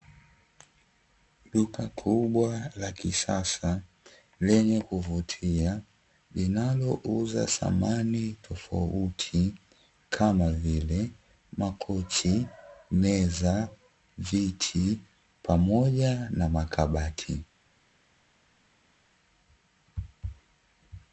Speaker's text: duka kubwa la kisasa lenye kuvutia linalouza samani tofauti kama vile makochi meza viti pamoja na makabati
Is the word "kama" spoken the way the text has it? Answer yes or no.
yes